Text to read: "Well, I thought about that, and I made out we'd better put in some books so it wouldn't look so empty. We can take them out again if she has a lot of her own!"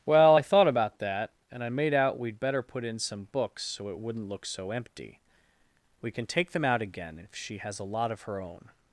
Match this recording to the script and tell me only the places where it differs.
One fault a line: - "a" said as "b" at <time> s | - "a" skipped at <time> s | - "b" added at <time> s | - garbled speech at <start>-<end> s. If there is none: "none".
none